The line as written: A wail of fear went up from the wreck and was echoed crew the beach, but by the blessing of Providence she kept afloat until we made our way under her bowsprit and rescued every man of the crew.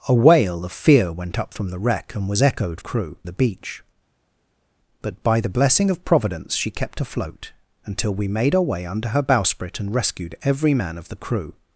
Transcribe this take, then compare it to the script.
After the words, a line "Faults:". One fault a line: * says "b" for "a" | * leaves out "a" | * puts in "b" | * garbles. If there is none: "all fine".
A wail of fear went up from the wreck and was echoed crew the beach, but by the blessing of Providence she kept afloat until we made our way under her bowsprit and rescued every man of the crew.
Faults:
all fine